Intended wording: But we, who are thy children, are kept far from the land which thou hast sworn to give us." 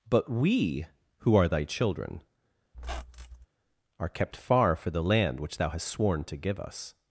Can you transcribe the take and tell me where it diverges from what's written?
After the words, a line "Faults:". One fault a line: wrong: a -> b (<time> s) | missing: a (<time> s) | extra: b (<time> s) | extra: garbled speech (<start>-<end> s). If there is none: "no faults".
But we, who are thy children, are kept far for the land which thou hast sworn to give us."
Faults:
wrong: from -> for (4.7 s)